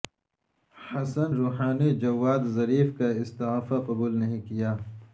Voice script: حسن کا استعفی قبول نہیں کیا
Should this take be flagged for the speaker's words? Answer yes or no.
yes